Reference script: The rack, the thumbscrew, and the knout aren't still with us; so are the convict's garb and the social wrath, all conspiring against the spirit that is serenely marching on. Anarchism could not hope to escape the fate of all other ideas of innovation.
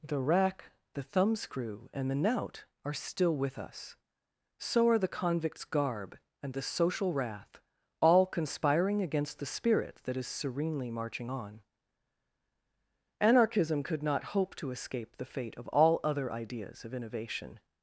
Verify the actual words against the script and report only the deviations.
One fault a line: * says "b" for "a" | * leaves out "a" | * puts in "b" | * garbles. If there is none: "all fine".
* says "are" for "aren't"